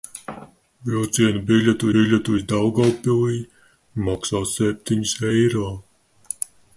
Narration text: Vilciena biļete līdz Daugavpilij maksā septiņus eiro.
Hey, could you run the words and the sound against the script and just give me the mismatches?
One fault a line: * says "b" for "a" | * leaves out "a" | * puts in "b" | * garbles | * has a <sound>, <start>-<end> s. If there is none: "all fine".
* puts in "biļete"